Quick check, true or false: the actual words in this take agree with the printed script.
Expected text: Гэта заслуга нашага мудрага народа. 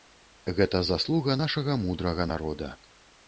true